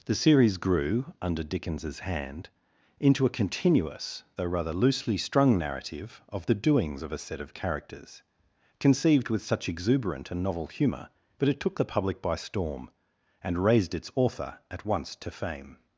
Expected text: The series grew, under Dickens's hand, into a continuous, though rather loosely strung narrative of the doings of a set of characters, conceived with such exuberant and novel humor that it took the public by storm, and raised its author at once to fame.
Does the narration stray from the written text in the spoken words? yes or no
yes